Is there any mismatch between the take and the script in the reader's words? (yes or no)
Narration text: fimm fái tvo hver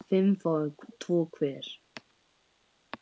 no